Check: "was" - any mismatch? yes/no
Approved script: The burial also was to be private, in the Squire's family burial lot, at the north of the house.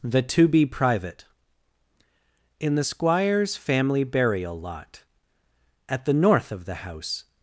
yes